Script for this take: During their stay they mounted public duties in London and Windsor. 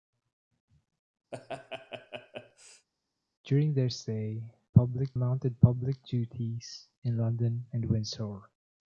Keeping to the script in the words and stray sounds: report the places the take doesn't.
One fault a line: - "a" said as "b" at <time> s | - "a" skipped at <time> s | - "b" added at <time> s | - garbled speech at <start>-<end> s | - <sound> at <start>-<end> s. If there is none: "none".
- laugh at 1.3-2.9 s
- "they" said as "public" at 4.7 s